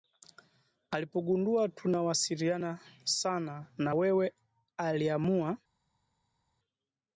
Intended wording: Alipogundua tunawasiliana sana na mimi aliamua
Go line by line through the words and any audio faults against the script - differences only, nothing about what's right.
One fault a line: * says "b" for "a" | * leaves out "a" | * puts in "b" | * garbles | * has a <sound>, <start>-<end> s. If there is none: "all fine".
* says "wewe" for "mimi"